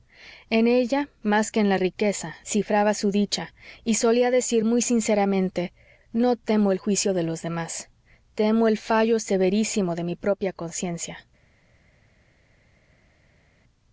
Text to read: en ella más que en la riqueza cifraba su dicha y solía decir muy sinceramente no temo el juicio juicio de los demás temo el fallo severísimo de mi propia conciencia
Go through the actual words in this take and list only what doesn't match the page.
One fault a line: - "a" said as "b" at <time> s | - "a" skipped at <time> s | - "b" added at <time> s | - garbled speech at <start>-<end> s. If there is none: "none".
- "juicio" skipped at 7.1 s